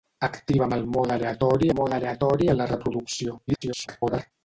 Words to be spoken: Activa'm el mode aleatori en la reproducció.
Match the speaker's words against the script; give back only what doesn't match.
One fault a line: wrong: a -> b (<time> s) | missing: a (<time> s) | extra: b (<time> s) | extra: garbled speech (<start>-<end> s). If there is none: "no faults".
extra: mode aleatori (1.8 s)
extra: garbled speech (3.5-4.3 s)